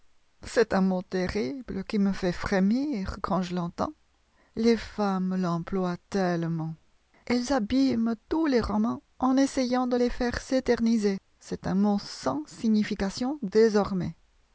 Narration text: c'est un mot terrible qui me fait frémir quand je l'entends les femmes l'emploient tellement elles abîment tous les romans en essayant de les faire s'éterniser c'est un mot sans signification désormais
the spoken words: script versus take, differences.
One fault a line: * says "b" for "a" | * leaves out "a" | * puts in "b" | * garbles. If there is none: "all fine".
all fine